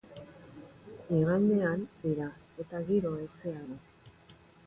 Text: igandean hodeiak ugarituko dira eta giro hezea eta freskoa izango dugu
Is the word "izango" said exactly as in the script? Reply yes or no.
no